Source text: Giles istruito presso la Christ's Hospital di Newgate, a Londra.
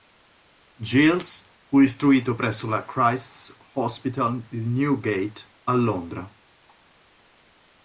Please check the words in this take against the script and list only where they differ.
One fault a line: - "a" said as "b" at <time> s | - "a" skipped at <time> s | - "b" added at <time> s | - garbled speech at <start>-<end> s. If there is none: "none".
- "fu" added at 1.6 s